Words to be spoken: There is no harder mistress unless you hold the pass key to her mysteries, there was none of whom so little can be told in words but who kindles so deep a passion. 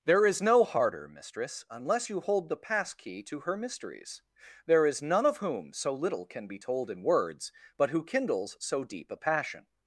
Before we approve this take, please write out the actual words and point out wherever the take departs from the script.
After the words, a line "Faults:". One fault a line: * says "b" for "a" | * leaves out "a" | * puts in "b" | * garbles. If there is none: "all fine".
There is no harder mistress unless you hold the pass key to her mysteries, there is none of whom so little can be told in words but who kindles so deep a passion.
Faults:
* says "is" for "was"